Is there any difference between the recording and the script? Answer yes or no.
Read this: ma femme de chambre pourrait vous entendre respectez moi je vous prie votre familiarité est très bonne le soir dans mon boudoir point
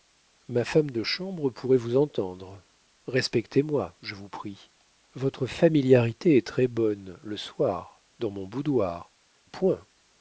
no